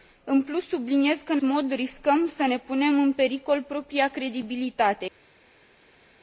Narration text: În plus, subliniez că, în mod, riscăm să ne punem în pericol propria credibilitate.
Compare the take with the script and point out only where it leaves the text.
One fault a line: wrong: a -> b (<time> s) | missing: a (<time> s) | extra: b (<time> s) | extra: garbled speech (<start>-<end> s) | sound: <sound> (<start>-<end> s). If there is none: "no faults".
no faults